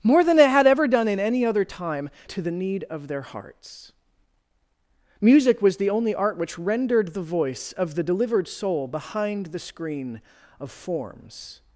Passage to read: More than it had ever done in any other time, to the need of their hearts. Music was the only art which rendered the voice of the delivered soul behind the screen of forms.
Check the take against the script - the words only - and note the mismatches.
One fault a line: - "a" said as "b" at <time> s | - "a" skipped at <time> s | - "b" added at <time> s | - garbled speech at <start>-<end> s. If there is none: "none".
none